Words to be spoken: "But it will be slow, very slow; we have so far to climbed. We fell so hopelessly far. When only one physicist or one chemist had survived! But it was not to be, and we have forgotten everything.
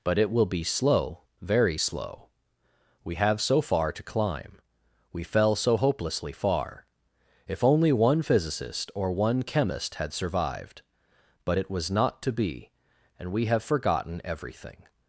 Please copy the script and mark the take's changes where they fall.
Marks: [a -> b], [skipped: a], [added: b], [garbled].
"But it will be slow, very slow; we have so far to [climbed. -> climb] We fell so hopelessly far. [When -> If] only one physicist or one chemist had survived! But it was not to be, and we have forgotten everything.